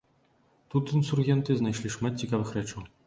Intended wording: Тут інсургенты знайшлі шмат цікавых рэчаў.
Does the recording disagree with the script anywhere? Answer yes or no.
no